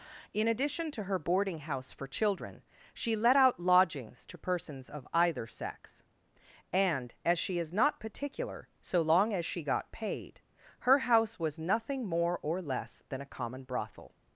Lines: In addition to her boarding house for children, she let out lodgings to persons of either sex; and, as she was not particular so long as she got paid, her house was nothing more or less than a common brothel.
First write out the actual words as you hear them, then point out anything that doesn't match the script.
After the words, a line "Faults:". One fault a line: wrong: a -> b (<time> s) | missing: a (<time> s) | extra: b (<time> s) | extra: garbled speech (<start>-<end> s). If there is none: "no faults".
In addition to her boarding house for children, she let out lodgings to persons of either sex; and, as she is not particular so long as she got paid, her house was nothing more or less than a common brothel.
Faults:
wrong: was -> is (7.6 s)